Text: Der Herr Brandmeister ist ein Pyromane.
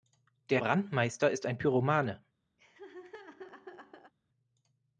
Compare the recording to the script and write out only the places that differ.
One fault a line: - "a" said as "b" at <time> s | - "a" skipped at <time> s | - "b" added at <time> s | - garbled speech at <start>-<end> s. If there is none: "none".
- "Herr" skipped at 0.6 s